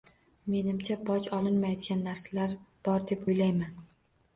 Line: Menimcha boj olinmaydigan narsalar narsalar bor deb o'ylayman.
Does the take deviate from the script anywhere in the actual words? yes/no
yes